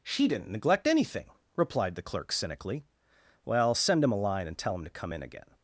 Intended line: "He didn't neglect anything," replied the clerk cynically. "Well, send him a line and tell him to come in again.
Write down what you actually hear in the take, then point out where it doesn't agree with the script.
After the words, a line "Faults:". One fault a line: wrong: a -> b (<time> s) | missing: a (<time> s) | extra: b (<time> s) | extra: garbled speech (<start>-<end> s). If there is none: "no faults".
"She didn't neglect anything," replied the clerk cynically. "Well, send him a line and tell him to come in again.
Faults:
wrong: He -> She (0.0 s)